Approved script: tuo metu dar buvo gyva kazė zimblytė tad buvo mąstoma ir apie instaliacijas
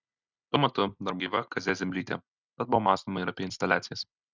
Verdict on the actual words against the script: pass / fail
fail